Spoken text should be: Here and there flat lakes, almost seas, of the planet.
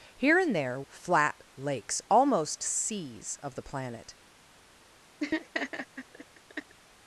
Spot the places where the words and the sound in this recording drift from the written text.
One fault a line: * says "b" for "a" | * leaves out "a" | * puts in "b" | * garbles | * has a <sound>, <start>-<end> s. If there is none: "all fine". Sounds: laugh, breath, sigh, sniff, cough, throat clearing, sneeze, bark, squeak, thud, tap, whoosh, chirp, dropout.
* has a laugh, 5.2-6.8 s